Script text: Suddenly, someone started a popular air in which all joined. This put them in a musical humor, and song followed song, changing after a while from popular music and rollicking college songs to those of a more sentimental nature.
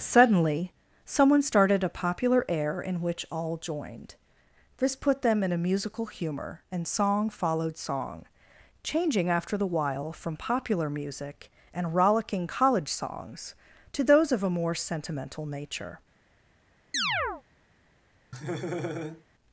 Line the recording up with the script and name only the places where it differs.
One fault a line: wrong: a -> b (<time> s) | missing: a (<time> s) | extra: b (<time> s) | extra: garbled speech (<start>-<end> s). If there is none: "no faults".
wrong: a -> the (9.6 s)